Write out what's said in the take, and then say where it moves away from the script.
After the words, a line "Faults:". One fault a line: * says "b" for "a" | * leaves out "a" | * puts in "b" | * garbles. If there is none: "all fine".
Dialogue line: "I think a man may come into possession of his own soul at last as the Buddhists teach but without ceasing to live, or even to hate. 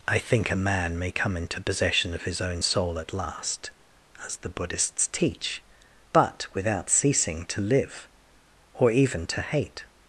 "I think a man may come into possession of his own soul at last as the Buddhists teach but without ceasing to live, or even to hate.
Faults:
all fine